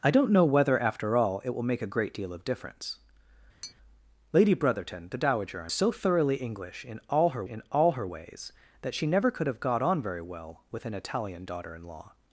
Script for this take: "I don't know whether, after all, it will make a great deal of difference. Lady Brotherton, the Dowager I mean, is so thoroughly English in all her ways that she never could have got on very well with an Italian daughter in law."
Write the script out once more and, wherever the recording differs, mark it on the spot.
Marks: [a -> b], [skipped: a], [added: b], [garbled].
"I don't know whether, after all, it will make a great deal of difference. Lady Brotherton, the Dowager I [skipped: mean, is] so thoroughly English in all her [added: in all her] ways that she never could have got on very well with an Italian daughter in law."